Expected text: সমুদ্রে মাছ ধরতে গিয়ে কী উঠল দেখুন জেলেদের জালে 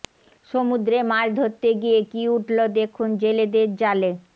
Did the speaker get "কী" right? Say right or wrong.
right